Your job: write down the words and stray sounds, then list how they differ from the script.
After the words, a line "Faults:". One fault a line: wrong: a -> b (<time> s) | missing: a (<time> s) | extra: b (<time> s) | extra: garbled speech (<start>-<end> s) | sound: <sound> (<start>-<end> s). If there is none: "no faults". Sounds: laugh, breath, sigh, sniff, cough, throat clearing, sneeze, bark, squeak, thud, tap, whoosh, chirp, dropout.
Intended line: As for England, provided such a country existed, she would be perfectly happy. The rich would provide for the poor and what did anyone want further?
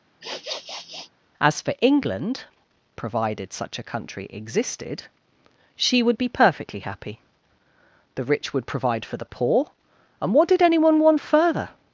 As for England, provided such a country existed, she would be perfectly happy. The rich would provide for the poor and what did anyone want further?
Faults:
sound: sniff (0.2-1.1 s)